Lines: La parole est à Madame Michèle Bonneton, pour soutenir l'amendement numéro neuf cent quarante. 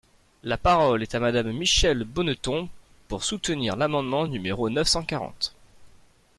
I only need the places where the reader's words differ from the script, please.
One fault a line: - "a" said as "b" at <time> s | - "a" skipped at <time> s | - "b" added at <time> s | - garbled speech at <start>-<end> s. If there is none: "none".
none